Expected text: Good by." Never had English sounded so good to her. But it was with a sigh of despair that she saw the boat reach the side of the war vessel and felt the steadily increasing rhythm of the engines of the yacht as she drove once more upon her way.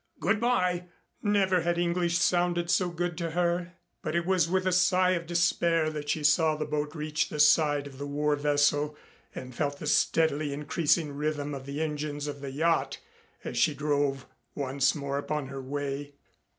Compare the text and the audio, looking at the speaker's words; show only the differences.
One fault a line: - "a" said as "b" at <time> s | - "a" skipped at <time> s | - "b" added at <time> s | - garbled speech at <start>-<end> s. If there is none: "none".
none